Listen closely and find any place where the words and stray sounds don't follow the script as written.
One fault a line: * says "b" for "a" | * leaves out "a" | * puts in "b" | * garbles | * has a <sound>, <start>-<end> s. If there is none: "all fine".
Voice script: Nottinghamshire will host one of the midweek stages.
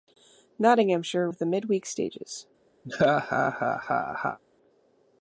* leaves out "will host one"
* has a laugh, 2.8-4.4 s